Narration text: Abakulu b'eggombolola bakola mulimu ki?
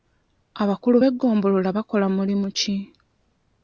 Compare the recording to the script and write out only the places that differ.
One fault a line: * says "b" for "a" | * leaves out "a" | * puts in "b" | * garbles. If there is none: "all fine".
all fine